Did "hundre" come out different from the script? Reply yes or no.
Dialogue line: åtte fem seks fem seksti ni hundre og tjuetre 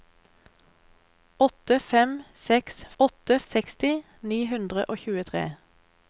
no